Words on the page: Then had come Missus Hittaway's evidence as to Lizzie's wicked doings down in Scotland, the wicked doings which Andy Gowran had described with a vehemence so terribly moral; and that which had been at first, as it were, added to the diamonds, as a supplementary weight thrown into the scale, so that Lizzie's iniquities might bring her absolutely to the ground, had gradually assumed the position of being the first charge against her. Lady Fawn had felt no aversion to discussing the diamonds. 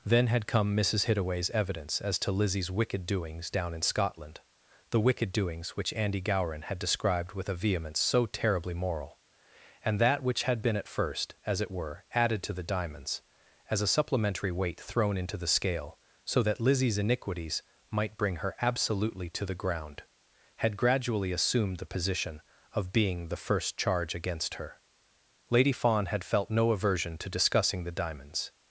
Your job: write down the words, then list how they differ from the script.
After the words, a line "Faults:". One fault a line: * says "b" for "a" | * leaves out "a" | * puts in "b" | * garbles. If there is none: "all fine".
Then had come Missus Hittaway's evidence as to Lizzie's wicked doings down in Scotland, the wicked doings which Andy Gowran had described with a vehemence so terribly moral; and that which had been at first, as it were, added to the diamonds, as a supplementary weight thrown into the scale, so that Lizzie's iniquities might bring her absolutely to the ground, had gradually assumed the position of being the first charge against her. Lady Fawn had felt no aversion to discussing the diamonds.
Faults:
all fine